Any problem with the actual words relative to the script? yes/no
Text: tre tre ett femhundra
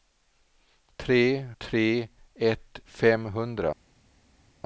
no